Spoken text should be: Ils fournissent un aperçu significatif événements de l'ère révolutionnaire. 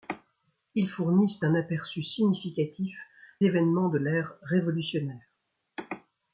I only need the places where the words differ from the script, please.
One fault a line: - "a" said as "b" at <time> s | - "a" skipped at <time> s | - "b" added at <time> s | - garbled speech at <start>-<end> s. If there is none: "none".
none